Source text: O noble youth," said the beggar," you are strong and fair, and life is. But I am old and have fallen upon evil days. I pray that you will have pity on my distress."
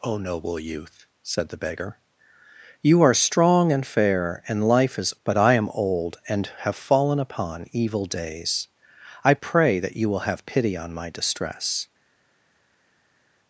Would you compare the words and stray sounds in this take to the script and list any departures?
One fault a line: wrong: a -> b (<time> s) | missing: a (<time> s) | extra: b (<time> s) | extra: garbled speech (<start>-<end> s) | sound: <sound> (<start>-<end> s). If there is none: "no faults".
no faults